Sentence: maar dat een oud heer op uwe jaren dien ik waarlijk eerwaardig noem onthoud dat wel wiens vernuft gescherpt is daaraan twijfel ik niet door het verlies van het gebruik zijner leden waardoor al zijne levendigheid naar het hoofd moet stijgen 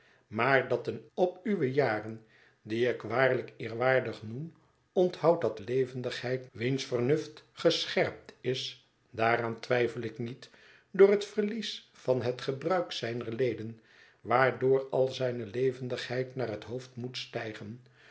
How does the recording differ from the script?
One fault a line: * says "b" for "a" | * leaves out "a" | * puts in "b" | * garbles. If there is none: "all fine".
* leaves out "oud heer"
* says "levendigheid" for "wel"